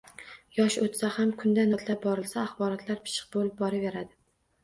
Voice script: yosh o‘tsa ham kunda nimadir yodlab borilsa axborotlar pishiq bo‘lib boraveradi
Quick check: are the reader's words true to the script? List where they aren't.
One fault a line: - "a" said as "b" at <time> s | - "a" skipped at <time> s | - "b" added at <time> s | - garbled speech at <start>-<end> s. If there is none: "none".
- "nimadir" skipped at 1.7 s